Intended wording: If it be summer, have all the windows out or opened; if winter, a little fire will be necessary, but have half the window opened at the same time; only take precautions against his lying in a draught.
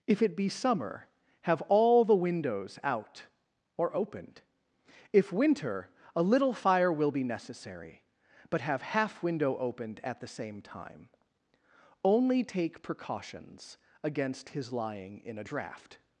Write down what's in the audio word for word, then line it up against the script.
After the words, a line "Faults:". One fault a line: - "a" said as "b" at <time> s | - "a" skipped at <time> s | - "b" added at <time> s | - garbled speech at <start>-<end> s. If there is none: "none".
If it be summer, have all the windows out or opened; if winter, a little fire will be necessary, but have half window opened at the same time; only take precautions against his lying in a draught.
Faults:
- "the" skipped at 9.2 s